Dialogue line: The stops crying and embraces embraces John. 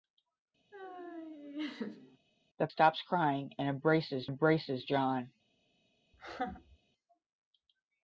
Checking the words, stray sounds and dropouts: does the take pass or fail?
fail